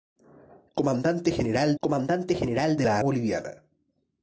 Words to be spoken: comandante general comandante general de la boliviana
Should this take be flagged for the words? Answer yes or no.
no